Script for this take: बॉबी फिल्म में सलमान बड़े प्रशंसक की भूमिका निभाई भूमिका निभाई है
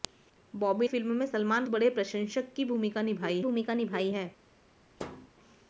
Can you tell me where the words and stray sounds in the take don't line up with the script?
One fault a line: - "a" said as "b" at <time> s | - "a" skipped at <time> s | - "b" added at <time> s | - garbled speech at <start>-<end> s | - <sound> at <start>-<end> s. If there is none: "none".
- thud at 5.0-5.3 s